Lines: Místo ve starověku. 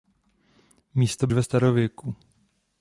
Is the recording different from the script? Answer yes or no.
no